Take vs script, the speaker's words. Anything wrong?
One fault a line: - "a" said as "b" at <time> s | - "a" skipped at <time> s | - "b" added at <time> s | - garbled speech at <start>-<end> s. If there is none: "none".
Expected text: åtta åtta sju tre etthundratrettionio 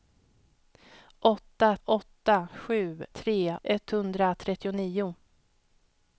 none